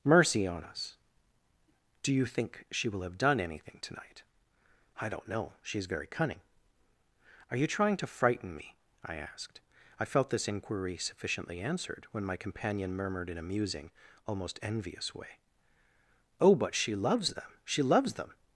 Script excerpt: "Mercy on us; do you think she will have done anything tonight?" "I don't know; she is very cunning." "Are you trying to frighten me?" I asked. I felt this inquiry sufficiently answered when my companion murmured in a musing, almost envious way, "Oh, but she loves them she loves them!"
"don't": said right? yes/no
yes